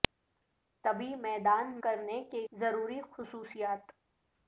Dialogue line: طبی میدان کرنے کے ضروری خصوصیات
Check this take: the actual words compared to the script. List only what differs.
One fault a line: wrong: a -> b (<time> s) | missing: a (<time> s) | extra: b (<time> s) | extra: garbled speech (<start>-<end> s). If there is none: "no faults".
no faults